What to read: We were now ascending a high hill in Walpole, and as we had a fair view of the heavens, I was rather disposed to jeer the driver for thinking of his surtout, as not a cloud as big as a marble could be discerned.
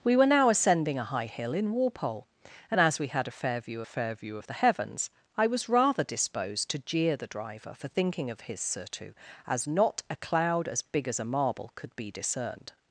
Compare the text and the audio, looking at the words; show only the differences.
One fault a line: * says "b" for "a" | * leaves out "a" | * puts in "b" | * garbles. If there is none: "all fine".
* puts in "fair view"